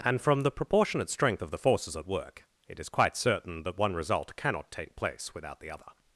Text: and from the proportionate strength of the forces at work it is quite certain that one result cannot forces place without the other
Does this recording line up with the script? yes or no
no